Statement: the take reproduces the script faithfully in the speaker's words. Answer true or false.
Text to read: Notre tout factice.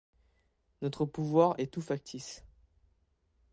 false